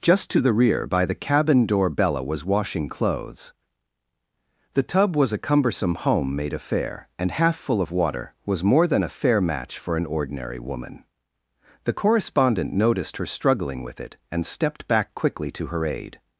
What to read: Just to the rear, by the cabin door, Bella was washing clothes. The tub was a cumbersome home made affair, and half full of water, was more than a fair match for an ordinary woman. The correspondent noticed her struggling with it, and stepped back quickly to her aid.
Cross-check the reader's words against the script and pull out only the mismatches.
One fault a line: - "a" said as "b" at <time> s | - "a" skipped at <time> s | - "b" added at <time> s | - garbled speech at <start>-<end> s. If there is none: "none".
none